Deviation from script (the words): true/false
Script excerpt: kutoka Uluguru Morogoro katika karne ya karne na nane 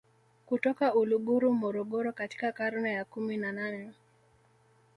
true